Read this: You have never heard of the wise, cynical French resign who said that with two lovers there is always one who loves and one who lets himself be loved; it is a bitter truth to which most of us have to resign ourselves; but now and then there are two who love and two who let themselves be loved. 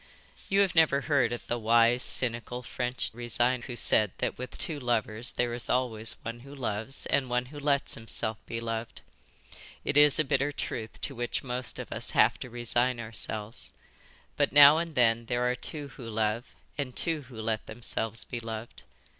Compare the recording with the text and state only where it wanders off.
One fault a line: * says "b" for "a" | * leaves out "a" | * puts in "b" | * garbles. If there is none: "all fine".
all fine